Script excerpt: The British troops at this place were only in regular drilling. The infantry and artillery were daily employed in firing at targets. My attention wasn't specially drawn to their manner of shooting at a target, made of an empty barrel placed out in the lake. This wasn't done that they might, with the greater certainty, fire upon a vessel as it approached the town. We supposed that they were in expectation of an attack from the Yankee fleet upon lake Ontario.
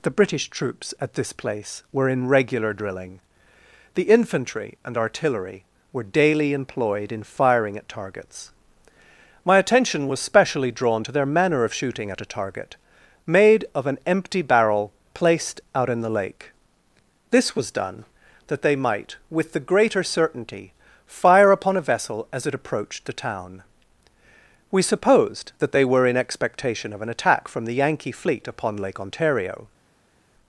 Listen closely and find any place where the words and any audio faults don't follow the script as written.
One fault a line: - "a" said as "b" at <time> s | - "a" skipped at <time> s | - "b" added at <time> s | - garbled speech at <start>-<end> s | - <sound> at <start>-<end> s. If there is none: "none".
- "only" skipped at 2.1 s
- "wasn't" said as "was" at 10.1 s
- "wasn't" said as "was" at 17.5 s